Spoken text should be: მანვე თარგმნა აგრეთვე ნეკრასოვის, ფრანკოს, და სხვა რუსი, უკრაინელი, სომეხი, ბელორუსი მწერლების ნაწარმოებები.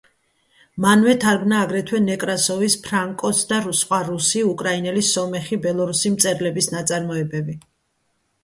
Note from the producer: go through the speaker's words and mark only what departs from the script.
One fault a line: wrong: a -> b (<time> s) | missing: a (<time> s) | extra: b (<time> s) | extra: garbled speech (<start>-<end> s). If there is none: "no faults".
no faults